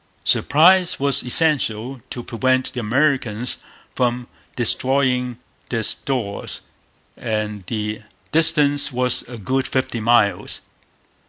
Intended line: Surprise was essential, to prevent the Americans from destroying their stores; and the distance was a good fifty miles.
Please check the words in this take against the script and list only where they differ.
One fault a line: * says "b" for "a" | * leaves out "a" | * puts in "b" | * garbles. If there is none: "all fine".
all fine